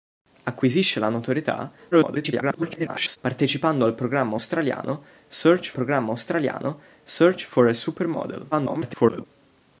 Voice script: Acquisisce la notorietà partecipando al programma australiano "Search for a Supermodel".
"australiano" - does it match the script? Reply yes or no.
yes